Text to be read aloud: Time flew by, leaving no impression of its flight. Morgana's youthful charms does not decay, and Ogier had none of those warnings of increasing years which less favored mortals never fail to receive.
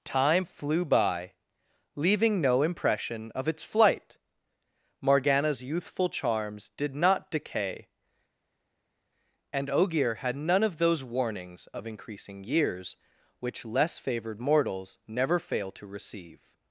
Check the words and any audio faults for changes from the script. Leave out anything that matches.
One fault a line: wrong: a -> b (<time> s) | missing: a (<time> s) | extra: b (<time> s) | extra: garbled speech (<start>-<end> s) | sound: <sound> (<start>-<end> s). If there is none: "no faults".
wrong: does -> did (6.8 s)